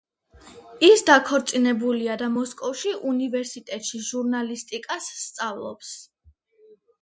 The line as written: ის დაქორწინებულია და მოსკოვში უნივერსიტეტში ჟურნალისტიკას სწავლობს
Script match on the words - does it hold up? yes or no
yes